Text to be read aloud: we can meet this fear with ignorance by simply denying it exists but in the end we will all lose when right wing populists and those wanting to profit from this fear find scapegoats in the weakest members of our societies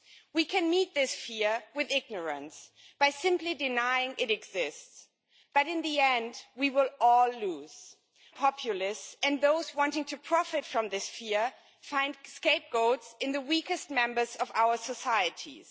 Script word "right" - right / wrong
wrong